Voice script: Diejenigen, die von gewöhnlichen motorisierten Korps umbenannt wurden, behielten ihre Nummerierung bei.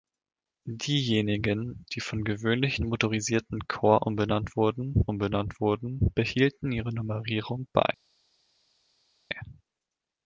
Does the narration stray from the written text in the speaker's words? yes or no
yes